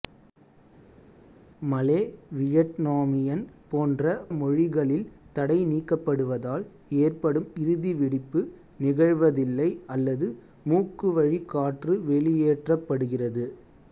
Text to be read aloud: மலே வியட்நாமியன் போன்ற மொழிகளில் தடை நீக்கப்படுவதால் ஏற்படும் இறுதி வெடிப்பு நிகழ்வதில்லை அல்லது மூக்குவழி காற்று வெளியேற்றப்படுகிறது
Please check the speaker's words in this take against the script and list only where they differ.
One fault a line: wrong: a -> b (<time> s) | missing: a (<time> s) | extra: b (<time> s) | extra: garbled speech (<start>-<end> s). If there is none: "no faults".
no faults